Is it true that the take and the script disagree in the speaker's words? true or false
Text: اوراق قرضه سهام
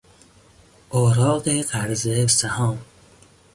false